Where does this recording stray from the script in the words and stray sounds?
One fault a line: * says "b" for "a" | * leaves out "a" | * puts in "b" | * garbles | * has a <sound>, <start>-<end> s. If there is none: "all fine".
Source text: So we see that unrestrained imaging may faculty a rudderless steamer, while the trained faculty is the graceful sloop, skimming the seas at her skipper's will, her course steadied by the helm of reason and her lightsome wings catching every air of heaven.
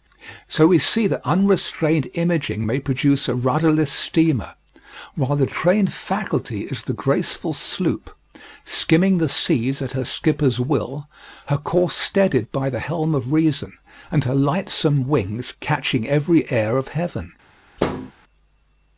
* says "produce" for "faculty"
* has a thud, 17.8-18.1 s